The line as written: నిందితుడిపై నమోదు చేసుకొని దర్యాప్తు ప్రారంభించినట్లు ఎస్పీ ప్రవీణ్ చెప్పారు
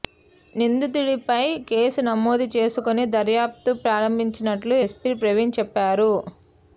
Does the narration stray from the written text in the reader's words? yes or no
yes